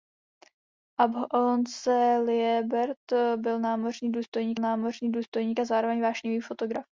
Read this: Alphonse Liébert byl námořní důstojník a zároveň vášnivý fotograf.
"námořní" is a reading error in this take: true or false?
false